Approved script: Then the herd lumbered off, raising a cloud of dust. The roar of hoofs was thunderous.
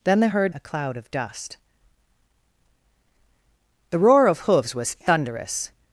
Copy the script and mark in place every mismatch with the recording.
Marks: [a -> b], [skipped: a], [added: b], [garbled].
Then the herd [skipped: lumbered off, raising] a cloud of dust. The roar of hoofs was thunderous.